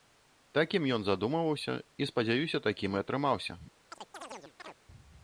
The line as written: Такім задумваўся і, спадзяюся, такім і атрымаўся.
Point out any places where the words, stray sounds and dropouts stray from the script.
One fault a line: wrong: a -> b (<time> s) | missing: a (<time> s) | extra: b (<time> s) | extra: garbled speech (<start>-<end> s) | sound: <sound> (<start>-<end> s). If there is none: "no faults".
extra: ён (0.9 s)
sound: chirp (3.9-4.8 s)